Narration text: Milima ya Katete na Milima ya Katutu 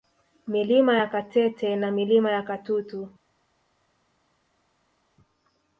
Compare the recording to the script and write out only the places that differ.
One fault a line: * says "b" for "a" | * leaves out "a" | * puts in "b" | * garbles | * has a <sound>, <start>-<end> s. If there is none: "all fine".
all fine